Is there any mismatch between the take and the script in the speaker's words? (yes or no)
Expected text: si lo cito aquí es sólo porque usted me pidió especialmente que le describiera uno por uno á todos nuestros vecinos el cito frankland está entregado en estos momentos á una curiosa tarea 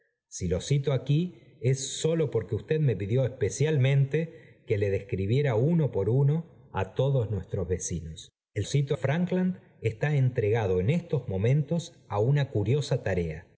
no